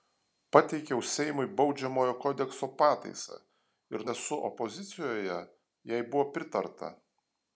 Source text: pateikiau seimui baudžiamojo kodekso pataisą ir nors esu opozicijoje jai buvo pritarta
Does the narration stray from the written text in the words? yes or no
yes